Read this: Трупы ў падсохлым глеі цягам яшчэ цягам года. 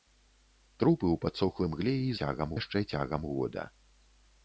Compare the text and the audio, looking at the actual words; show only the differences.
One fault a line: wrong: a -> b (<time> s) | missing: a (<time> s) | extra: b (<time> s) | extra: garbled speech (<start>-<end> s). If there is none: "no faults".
no faults